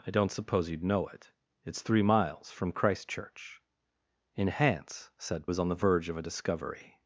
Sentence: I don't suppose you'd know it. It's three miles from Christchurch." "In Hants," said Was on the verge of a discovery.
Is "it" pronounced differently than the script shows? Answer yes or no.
no